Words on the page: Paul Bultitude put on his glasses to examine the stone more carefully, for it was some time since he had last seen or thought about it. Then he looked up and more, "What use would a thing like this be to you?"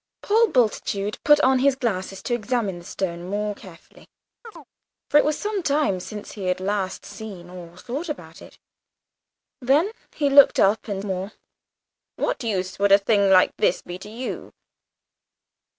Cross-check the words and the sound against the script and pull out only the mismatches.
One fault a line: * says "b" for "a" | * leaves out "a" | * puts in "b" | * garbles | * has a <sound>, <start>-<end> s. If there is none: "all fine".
* has a chirp, 4.4-4.7 s